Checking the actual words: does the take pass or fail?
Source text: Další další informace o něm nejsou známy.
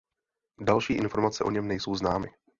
fail